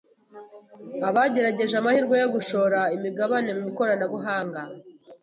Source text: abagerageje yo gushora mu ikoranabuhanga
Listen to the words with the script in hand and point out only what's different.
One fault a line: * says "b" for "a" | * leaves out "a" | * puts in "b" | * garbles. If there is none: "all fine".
* puts in "amahirwe"
* puts in "imigabane"